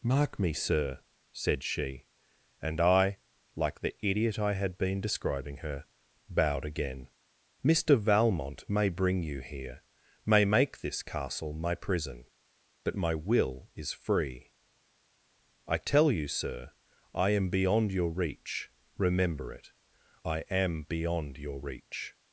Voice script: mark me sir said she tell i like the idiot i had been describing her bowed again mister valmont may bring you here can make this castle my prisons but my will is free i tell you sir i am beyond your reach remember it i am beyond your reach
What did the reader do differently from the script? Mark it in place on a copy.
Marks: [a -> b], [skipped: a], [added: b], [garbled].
mark me sir said she [tell -> and] i like the idiot i had been describing her bowed again mister valmont may bring you here [can -> may] make this castle my [prisons -> prison] but my will is free i tell you sir i am beyond your reach remember it i am beyond your reach